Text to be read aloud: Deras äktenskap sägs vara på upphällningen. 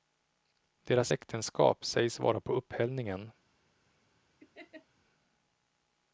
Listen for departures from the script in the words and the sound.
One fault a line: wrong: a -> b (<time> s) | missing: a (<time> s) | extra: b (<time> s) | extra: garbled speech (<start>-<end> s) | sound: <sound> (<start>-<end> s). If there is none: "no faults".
sound: laugh (4.4-4.9 s)